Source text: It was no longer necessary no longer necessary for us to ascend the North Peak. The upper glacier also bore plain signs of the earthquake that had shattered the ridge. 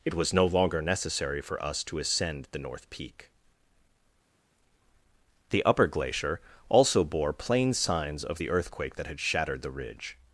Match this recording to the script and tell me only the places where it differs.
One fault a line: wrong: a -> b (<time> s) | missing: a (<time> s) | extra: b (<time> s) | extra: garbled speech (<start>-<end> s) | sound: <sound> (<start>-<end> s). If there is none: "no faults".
missing: no longer necessary (1.4 s)